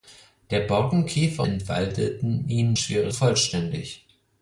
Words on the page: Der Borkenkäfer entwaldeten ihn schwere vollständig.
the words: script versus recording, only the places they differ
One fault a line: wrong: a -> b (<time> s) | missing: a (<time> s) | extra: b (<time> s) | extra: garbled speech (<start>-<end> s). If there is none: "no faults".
no faults